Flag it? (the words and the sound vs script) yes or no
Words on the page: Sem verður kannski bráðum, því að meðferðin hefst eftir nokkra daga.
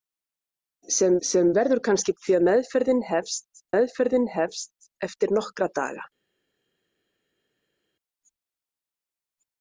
yes